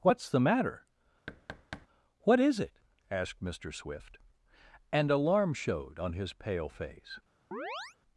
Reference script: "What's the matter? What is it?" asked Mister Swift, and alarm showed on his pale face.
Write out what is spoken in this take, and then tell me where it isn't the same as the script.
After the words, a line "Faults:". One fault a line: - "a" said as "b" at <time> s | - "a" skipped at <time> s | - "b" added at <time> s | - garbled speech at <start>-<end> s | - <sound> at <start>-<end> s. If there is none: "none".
"What's the matter? What is it?" asked Mister Swift, and alarm showed on his pale face.
Faults:
- thud at 1.3-1.9 s
- chirp at 7.5-8.0 s